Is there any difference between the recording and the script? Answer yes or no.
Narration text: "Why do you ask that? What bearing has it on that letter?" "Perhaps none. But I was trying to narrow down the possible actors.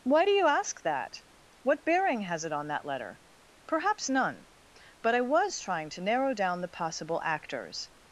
no